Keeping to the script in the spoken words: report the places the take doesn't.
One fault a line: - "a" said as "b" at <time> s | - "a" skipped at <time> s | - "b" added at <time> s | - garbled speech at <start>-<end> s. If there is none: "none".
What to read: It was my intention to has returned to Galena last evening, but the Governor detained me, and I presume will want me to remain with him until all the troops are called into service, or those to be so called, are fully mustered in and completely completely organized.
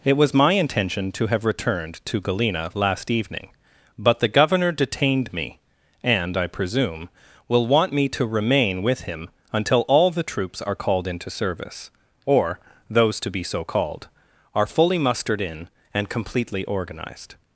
- "has" said as "have" at 1.3 s
- "completely" skipped at 16.6 s